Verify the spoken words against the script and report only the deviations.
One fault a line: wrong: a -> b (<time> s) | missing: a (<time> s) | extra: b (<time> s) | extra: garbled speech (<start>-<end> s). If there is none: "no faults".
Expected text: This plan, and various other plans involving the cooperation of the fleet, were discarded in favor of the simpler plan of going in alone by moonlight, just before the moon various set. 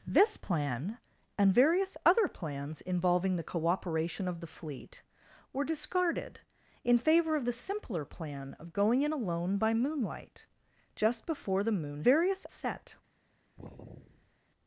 no faults